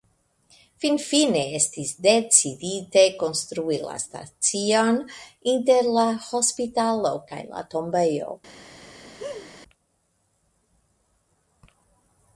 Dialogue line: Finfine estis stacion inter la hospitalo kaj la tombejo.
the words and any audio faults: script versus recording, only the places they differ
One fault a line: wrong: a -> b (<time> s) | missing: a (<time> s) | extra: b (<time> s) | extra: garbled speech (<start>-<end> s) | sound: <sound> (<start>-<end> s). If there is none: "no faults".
extra: decidite konstrui la (2.0 s)
sound: laugh (9.0-9.5 s)